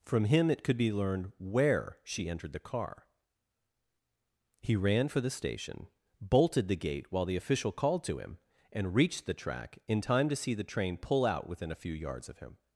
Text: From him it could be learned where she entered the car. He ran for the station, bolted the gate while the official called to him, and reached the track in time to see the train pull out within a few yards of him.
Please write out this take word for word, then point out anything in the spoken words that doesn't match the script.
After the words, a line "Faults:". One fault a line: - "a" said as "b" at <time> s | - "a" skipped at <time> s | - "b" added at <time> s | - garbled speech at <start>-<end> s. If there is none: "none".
From him it could be learned where she entered the car. He ran for the station, bolted the gate while the official called to him, and reached the track in time to see the train pull out within a few yards of him.
Faults:
none